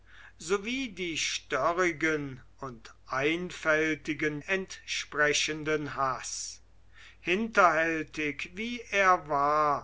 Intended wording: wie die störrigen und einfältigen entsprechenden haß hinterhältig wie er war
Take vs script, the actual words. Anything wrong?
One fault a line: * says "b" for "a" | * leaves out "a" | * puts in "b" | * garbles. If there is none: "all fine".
all fine